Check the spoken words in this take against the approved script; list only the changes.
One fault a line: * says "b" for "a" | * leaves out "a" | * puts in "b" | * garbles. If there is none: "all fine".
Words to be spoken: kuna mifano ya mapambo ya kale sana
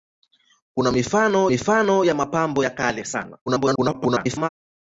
* puts in "mifano"
* garbles